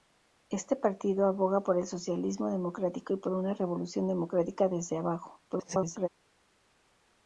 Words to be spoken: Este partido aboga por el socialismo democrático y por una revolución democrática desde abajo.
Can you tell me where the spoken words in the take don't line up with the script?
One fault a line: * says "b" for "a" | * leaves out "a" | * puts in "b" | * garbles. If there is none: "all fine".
* garbles